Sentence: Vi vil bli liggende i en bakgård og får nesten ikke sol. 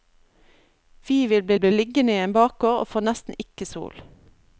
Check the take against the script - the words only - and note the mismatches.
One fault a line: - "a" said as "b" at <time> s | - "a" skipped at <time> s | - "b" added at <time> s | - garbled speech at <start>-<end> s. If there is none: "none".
- "bli" added at 1.6 s